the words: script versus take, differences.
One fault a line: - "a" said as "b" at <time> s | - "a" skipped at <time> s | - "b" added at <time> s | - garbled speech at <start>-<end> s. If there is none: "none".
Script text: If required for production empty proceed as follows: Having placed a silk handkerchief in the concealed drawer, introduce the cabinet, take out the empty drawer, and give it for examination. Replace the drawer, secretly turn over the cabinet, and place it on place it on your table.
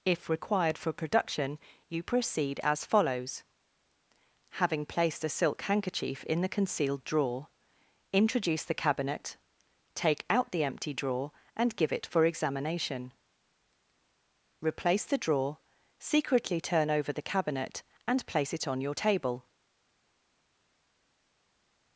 - "empty" said as "you" at 1.9 s
- "place it on" skipped at 18.8 s